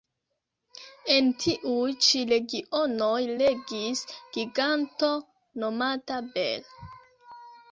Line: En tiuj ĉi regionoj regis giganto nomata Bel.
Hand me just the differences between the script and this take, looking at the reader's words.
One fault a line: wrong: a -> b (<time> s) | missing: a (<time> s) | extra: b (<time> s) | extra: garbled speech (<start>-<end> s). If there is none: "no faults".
no faults